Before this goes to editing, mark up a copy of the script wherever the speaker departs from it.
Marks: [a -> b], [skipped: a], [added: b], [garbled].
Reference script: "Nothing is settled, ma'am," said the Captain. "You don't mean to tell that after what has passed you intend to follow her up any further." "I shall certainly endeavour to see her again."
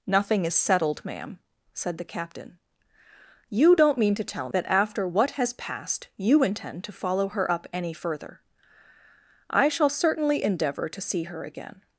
"Nothing is settled, ma'am," said the Captain. "You don't mean to tell that after what has passed you intend to follow her up any further." "I shall certainly endeavour to see her again."